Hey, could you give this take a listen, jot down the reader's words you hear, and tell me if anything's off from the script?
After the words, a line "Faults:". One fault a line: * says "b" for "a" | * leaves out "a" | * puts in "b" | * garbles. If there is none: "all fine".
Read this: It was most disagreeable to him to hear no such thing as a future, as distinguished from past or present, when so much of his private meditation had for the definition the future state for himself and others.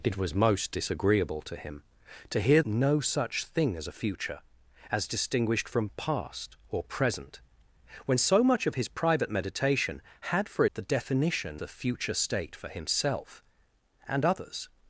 It was most disagreeable to him to hear no such thing as a future, as distinguished from past or present, when so much of his private meditation had for the definition the future state for himself and others.
Faults:
all fine